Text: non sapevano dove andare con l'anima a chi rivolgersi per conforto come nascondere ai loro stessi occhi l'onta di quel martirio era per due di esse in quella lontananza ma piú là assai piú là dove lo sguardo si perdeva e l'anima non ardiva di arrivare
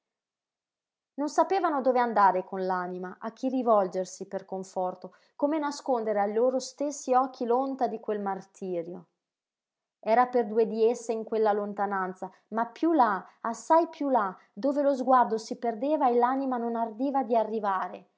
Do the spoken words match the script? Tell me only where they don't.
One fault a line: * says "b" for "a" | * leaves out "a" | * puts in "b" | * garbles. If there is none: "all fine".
all fine